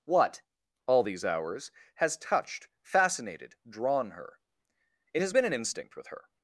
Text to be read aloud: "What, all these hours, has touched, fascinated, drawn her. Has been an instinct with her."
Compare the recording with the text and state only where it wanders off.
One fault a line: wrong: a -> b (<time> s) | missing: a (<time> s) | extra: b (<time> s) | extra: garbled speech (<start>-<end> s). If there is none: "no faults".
extra: It (5.1 s)